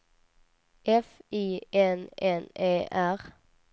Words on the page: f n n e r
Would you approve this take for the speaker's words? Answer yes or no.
no